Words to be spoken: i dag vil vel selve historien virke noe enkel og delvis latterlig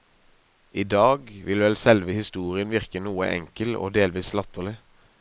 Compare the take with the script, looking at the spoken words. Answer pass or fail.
pass